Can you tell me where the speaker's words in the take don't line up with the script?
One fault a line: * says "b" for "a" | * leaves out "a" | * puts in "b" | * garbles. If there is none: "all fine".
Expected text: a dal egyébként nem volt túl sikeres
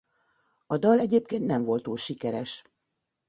all fine